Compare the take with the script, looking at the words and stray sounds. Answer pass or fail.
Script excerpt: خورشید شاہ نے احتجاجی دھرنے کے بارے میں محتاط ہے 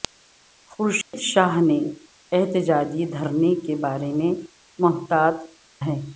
fail